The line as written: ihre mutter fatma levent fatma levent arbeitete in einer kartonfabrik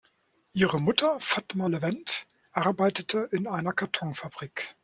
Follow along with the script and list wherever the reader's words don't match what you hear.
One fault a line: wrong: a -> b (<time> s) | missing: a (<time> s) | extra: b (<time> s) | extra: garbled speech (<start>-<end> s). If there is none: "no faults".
missing: fatma levent (2.3 s)